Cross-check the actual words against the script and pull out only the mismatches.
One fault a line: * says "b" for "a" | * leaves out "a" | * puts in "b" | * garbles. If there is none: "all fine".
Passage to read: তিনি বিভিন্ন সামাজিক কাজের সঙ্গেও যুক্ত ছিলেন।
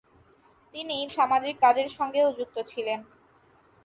* leaves out "বিভিন্ন"